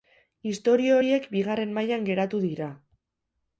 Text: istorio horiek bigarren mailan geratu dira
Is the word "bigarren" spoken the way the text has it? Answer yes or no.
yes